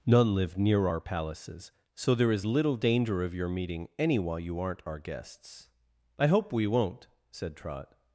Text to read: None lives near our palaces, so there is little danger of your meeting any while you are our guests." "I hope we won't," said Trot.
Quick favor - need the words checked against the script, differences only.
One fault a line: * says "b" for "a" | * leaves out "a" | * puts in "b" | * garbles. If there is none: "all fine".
* says "live" for "lives"
* says "aren't" for "are"